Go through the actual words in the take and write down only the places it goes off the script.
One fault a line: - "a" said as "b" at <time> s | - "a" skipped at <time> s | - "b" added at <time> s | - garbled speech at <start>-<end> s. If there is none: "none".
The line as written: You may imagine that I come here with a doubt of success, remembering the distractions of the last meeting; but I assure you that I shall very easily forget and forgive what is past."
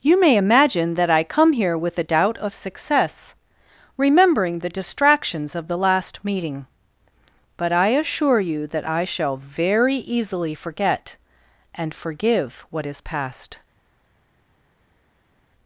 none